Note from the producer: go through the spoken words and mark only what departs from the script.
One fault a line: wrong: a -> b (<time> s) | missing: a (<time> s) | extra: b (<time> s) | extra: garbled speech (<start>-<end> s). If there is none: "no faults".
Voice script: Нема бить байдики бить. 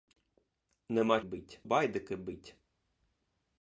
no faults